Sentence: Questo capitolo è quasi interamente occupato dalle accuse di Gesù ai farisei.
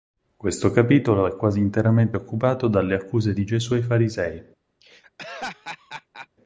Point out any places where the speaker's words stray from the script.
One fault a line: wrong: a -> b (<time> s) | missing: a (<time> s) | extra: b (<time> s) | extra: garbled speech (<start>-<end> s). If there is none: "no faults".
no faults